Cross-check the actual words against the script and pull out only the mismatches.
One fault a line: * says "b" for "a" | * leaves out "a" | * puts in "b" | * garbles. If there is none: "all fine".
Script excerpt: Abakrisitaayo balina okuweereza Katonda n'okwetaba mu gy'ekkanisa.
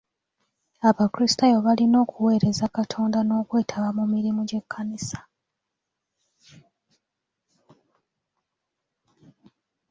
* puts in "mirimu"